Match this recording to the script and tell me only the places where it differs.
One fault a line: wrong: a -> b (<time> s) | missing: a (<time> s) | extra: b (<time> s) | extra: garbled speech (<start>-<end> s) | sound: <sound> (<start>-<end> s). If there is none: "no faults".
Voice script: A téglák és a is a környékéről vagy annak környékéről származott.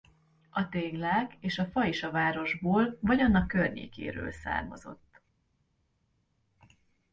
extra: fa (1.6 s)
wrong: környékéről -> városból (2.1 s)